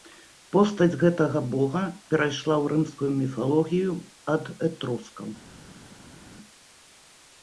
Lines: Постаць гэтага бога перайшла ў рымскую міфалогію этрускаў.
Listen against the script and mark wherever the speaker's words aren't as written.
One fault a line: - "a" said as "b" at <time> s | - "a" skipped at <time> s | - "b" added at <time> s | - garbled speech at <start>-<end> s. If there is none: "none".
- "ад" added at 4.4 s